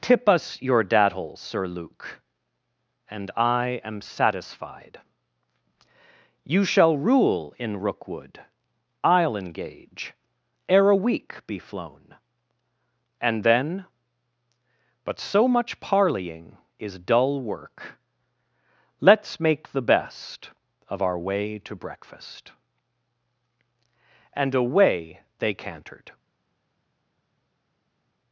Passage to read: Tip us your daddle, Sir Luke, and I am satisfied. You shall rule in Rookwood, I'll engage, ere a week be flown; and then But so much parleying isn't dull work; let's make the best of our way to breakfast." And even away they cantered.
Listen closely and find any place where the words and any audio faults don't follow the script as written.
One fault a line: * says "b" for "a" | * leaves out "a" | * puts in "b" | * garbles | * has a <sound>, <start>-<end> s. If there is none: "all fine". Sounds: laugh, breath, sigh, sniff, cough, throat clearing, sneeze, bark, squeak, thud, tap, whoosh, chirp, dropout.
* says "is" for "isn't"
* leaves out "even"